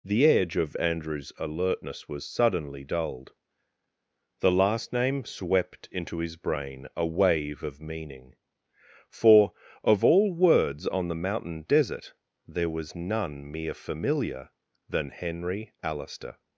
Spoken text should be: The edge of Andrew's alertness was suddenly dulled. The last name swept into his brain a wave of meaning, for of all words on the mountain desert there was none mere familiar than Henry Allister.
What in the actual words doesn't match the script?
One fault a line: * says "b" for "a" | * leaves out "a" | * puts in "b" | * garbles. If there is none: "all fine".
all fine